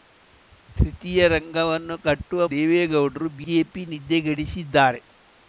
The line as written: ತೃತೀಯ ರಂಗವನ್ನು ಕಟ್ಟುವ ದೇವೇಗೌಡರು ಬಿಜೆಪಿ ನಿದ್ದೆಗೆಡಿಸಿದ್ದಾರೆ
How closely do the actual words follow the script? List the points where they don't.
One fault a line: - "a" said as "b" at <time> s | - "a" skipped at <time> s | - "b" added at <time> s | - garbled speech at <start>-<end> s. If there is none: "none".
none